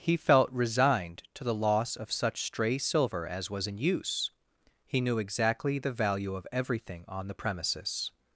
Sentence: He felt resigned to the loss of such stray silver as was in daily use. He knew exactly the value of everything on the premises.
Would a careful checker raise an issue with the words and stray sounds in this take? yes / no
yes